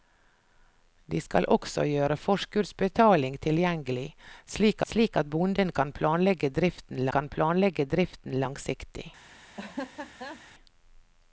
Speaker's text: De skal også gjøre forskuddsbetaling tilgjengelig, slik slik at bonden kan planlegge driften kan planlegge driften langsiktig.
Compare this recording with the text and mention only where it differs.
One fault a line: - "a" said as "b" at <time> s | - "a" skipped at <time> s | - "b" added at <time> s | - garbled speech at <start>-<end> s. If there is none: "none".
none